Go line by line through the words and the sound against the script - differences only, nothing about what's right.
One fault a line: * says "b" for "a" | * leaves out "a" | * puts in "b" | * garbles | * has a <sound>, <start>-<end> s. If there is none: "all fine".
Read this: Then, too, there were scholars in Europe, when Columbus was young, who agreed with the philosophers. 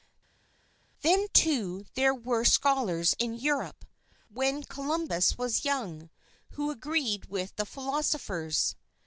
all fine